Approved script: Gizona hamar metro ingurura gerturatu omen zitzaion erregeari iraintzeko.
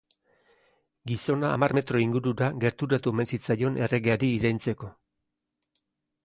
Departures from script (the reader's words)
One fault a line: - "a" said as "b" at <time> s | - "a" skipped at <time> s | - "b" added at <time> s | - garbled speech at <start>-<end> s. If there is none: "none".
none